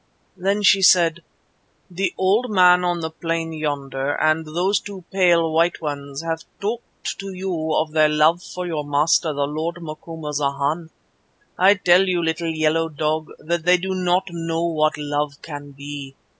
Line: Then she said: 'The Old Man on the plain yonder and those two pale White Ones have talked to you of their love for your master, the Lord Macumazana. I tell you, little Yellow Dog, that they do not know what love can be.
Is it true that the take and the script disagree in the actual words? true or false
false